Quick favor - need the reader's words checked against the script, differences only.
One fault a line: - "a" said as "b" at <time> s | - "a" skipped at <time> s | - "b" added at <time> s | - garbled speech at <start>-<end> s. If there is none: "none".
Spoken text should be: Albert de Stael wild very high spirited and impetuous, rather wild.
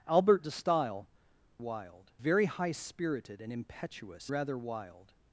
none